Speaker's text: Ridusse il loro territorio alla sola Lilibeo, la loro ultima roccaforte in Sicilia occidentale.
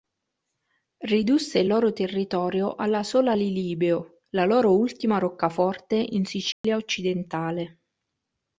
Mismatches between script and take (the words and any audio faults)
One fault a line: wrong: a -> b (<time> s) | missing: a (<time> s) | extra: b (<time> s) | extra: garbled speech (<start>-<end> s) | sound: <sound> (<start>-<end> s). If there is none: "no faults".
sound: dropout (6.5-6.6 s)